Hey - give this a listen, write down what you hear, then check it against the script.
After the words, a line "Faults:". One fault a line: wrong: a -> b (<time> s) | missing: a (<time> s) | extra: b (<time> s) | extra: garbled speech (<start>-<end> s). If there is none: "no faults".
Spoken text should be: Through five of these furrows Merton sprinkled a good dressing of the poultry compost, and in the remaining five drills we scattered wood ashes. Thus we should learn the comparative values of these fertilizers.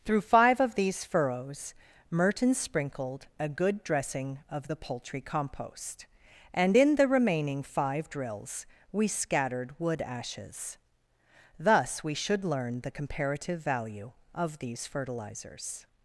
Through five of these furrows Merton sprinkled a good dressing of the poultry compost, and in the remaining five drills we scattered wood ashes. Thus we should learn the comparative value of these fertilizers.
Faults:
wrong: values -> value (13.6 s)